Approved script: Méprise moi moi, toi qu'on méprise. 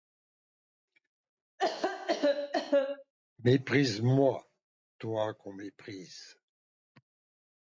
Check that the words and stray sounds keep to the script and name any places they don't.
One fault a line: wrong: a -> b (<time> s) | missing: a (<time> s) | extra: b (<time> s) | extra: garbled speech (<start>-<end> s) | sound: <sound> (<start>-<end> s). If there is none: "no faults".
sound: cough (1.6-3.1 s)
missing: moi (4.5 s)